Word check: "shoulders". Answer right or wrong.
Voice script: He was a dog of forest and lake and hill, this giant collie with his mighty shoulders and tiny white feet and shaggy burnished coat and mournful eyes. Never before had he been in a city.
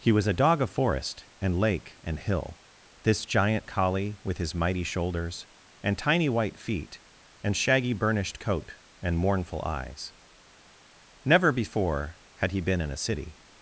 right